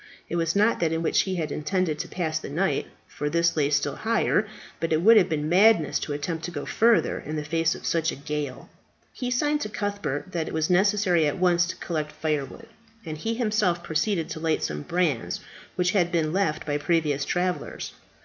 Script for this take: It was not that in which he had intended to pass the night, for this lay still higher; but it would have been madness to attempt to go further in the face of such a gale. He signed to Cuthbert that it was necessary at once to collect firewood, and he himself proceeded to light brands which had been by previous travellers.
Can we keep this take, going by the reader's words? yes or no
no